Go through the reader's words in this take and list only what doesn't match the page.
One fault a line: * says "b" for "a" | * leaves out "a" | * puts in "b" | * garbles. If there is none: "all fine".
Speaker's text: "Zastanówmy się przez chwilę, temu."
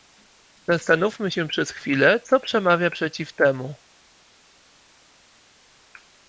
* puts in "co przemawia przeciw"